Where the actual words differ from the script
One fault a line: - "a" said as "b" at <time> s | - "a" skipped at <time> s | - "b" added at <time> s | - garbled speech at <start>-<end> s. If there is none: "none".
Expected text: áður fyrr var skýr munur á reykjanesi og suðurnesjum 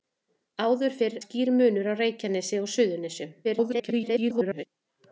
- "var" skipped at 1.2 s
- garbled speech at 3.4-4.7 s